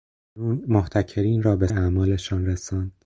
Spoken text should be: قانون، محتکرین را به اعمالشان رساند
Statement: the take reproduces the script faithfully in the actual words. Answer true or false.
true